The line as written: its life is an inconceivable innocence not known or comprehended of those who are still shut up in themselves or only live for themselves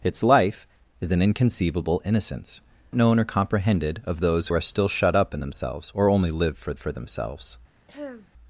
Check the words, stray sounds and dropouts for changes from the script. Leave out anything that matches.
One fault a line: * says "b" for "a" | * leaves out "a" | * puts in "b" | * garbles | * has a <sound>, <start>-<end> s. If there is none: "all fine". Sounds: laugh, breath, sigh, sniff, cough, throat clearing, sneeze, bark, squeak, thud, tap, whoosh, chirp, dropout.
* leaves out "not"
* leaves out "who"
* puts in "for"
* has a throat clearing, 7.9-8.3 s